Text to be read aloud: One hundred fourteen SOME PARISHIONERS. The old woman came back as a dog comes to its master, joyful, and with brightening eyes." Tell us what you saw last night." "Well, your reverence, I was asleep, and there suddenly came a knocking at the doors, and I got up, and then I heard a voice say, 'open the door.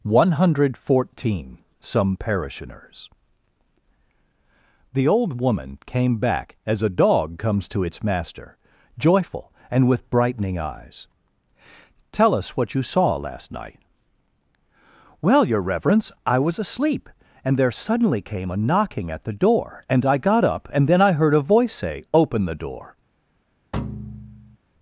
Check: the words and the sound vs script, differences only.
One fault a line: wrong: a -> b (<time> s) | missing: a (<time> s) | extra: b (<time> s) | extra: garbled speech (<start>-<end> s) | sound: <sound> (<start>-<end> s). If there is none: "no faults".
wrong: doors -> door (19.3 s)
sound: thud (23.7-24.6 s)